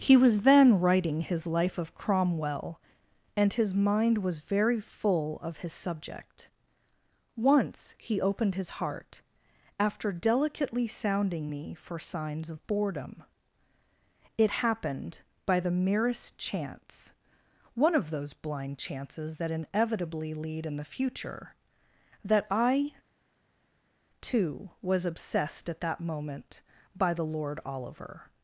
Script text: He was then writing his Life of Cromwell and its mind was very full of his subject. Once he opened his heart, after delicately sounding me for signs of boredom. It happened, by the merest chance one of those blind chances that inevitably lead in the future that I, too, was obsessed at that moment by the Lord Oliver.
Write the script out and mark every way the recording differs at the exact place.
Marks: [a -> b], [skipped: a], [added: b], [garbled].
He was then writing his Life of Cromwell and [its -> his] mind was very full of his subject. Once he opened his heart, after delicately sounding me for signs of boredom. It happened, by the merest chance one of those blind chances that inevitably lead in the future that I, too, was obsessed at that moment by the Lord Oliver.